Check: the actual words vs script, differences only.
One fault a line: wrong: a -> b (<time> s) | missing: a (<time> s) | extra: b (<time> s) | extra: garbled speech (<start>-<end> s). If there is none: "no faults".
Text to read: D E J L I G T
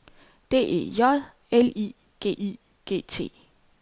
extra: I G (2.4 s)